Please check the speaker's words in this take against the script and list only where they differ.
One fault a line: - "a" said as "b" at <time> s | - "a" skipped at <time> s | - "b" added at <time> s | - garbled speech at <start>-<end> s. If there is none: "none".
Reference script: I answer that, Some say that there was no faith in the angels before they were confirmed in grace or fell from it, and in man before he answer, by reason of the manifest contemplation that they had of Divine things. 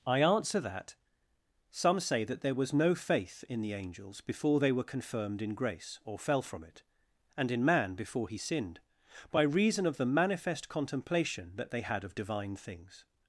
- "answer" said as "sinned" at 8.4 s